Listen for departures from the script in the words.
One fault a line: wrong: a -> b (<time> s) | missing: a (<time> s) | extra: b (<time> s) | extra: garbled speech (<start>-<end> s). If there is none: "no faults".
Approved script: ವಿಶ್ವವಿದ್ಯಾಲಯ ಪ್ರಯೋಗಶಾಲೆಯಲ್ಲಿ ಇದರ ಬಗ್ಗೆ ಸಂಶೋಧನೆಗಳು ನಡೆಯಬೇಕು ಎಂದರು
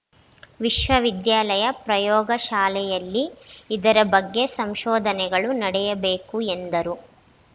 no faults